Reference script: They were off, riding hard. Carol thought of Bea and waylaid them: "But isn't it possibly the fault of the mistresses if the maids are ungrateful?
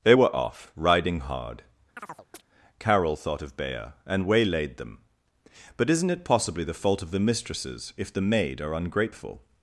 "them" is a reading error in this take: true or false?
false